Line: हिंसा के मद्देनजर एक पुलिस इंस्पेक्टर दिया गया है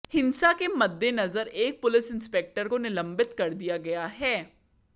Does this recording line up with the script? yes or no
no